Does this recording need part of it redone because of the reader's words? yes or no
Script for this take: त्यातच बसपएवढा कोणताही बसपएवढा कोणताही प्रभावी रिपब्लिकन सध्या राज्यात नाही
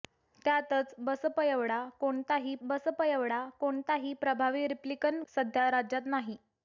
no